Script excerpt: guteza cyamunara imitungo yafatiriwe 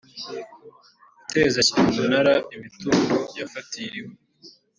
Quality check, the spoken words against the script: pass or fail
pass